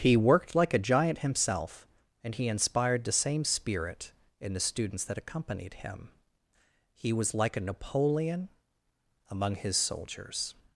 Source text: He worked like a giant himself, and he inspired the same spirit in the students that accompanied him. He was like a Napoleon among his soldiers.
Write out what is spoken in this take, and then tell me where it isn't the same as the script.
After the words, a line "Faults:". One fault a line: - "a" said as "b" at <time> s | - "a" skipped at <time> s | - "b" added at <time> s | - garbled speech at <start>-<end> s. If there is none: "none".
He worked like a giant himself, and he inspired the same spirit in the students that accompanied him. He was like a Napoleon among his soldiers.
Faults:
none